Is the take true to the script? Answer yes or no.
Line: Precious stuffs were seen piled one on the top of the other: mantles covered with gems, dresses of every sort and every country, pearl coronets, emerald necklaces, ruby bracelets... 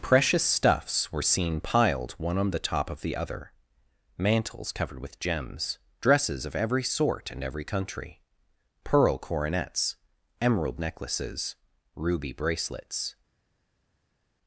yes